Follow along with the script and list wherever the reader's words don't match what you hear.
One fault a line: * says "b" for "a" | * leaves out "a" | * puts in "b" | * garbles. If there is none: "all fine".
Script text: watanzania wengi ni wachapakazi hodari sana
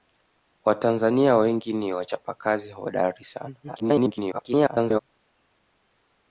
* garbles